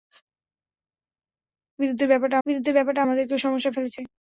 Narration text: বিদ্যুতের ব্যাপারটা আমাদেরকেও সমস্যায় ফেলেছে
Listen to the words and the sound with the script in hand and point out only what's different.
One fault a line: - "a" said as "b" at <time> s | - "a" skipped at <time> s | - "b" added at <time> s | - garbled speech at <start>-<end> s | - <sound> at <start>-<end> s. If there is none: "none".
- "বিদ্যুতের ব্যাপারটা" added at 2.5 s